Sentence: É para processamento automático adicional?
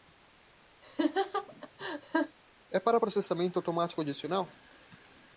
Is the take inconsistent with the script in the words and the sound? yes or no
yes